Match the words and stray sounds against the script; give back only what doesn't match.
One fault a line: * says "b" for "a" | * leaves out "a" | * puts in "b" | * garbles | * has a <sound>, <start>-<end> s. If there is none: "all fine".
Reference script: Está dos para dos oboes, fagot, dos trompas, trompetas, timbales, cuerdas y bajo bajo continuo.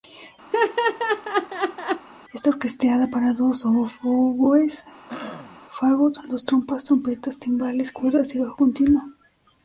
* has a laugh, 0.5-2.1 s
* says "orquestada" for "dos"
* has a throat clearing, 5.1-5.6 s
* leaves out "bajo"